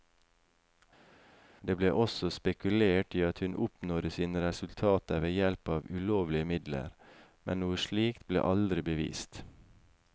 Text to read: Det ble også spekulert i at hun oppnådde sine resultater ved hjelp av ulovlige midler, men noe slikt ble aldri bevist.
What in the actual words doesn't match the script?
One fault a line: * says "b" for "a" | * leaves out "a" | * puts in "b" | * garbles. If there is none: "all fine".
all fine